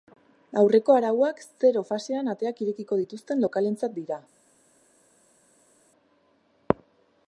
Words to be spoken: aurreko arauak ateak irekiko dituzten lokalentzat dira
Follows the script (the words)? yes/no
no